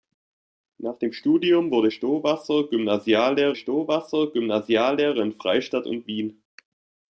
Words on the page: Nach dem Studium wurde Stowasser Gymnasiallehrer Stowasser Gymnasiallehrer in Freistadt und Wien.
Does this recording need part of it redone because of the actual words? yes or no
no